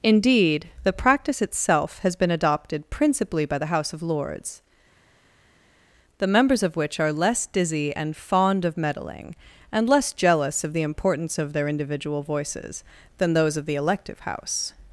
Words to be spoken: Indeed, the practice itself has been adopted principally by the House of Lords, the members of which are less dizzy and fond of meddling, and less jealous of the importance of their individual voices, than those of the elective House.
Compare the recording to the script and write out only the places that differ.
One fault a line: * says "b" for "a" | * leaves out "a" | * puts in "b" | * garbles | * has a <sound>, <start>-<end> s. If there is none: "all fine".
all fine